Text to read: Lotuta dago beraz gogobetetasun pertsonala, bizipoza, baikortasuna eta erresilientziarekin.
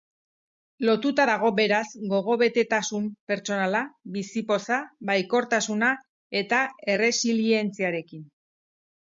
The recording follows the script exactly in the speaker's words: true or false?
true